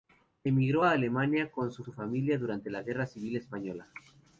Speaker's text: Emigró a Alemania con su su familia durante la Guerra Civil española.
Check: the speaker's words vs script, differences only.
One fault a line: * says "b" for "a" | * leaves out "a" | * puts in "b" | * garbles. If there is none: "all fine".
all fine